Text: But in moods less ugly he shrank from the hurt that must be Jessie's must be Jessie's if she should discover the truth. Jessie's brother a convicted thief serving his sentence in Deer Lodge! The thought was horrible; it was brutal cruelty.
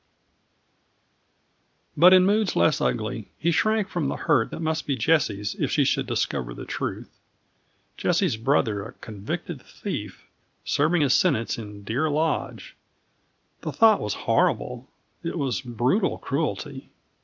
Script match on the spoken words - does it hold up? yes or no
no